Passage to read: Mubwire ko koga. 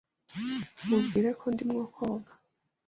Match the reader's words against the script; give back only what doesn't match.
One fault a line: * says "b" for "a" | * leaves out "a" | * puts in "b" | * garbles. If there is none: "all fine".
* puts in "ndimo"